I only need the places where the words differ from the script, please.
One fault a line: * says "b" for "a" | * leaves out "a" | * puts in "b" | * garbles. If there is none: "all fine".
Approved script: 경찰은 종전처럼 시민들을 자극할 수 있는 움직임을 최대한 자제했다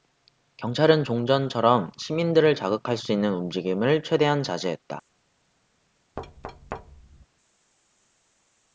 all fine